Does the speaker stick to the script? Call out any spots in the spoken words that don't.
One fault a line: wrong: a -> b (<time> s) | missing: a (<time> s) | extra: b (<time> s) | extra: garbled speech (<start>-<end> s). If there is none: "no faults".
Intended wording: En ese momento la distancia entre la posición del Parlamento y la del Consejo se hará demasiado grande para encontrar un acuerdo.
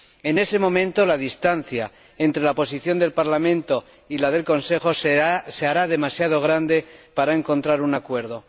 no faults